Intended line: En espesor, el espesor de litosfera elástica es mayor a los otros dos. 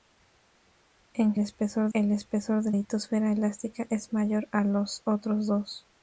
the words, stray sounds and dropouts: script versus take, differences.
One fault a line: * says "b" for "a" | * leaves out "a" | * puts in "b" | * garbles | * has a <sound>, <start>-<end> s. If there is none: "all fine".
all fine